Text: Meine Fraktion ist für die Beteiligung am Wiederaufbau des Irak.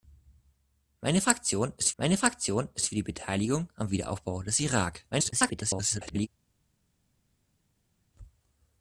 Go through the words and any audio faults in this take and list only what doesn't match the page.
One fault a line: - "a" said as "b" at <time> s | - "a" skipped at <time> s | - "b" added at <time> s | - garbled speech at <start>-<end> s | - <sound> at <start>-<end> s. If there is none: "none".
- "meine Fraktion ist" added at 2.0 s
- garbled speech at 5.1-6.3 s